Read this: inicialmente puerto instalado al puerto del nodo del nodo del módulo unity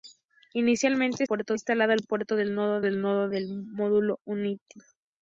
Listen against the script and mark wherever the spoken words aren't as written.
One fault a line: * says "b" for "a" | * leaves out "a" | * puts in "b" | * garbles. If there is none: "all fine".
all fine